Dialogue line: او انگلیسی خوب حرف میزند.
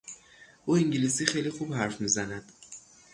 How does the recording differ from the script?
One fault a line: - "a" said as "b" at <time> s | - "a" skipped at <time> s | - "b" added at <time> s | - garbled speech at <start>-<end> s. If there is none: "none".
- "خیلی" added at 1.2 s